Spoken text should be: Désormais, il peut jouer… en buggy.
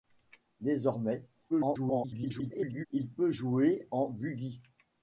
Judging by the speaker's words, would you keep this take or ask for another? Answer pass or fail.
fail